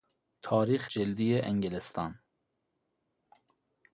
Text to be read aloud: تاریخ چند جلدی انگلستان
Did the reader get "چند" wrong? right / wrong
wrong